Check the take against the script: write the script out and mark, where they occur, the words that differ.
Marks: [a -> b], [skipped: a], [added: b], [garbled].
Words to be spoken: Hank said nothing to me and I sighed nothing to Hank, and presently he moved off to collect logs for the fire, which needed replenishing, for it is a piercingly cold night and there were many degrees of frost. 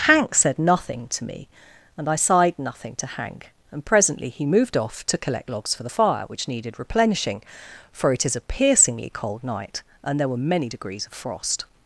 Hank said nothing to me and I sighed nothing to Hank, and presently he moved off to collect logs for the fire, which needed replenishing, for it is a piercingly cold night and there were many degrees of frost.